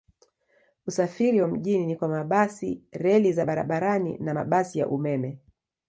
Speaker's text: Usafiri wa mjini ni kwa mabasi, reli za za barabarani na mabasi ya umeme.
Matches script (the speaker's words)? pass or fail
fail